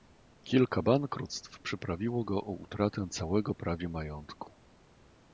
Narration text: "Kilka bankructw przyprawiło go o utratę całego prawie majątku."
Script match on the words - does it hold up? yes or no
yes